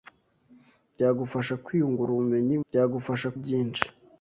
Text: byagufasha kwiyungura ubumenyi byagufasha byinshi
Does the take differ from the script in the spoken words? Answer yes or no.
no